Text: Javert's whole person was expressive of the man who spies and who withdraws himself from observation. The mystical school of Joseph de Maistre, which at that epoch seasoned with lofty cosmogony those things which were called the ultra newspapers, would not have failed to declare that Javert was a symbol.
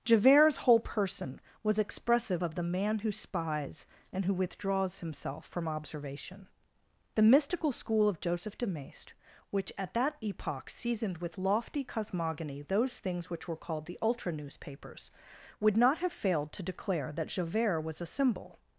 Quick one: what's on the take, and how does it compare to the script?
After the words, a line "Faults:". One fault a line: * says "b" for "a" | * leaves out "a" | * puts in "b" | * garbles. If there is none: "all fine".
Javert's whole person was expressive of the man who spies and who withdraws himself from observation. The mystical school of Joseph de Maistre, which at that epoch seasoned with lofty cosmogony those things which were called the ultra newspapers, would not have failed to declare that Javert was a symbol.
Faults:
all fine